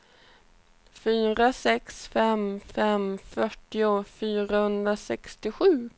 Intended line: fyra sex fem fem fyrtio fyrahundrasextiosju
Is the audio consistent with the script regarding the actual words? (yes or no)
yes